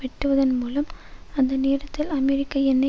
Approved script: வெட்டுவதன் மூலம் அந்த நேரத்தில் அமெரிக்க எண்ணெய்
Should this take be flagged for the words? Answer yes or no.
no